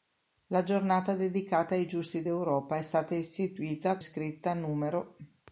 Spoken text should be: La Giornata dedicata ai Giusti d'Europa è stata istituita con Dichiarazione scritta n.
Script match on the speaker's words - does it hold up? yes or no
no